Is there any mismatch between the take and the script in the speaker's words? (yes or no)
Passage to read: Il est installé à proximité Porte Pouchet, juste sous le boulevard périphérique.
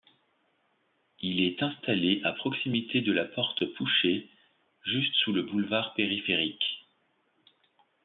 yes